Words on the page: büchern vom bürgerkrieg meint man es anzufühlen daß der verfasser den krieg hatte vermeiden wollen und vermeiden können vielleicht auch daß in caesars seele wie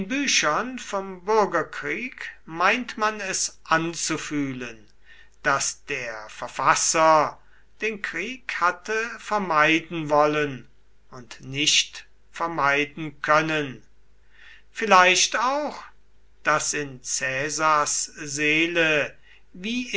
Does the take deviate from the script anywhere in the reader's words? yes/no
yes